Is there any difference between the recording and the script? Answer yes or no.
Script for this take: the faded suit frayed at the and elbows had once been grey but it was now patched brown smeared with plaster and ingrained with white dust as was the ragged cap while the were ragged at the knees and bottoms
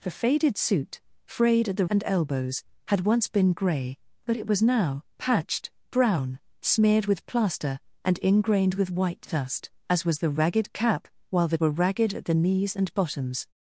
no